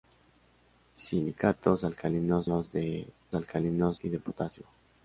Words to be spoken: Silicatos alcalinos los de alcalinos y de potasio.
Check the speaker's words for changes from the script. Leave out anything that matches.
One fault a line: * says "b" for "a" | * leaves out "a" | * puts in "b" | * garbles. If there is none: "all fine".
all fine